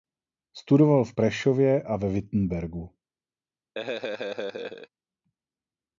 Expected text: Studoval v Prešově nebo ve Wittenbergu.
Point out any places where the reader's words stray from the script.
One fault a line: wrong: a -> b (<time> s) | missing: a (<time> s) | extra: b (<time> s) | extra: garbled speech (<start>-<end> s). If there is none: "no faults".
wrong: nebo -> a (1.8 s)